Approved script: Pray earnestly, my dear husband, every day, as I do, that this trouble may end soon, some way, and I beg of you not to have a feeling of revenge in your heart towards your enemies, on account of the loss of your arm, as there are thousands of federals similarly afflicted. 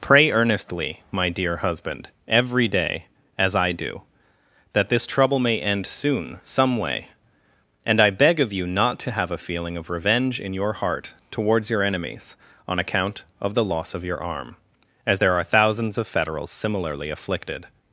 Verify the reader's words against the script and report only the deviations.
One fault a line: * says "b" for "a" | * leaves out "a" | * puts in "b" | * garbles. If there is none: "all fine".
all fine